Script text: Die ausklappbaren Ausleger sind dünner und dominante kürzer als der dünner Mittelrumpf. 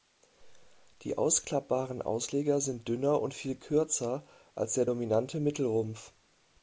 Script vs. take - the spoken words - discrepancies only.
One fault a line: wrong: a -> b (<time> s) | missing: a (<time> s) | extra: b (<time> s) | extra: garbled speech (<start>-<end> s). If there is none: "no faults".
wrong: dominante -> viel (3.4 s)
wrong: dünner -> dominante (4.8 s)